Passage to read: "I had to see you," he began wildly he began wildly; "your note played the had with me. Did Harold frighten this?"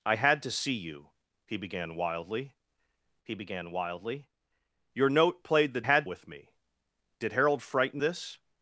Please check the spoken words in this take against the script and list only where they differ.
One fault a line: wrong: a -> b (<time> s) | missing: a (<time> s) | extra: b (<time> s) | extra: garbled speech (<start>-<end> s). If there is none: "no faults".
no faults